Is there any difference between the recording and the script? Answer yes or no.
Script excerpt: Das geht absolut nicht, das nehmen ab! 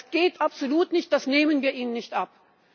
yes